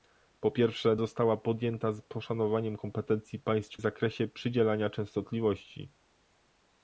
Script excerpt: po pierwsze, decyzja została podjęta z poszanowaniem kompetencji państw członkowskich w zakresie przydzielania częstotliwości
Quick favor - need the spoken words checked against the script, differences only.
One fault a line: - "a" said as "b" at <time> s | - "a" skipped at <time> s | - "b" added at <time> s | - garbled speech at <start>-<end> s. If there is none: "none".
- "decyzja" skipped at 0.9 s
- "członkowskich" skipped at 3.8 s